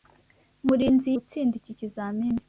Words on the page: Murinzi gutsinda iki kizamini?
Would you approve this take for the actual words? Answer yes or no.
yes